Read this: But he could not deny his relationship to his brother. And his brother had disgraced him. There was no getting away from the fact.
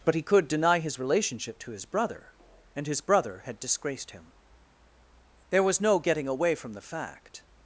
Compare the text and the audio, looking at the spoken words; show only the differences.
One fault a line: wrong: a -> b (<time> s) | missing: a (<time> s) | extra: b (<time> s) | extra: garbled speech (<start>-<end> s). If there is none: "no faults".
missing: not (0.5 s)